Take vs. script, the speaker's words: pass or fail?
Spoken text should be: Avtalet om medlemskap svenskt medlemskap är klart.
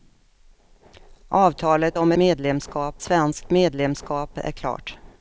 pass